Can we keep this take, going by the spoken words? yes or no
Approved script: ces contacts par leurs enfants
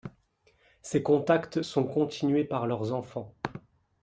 no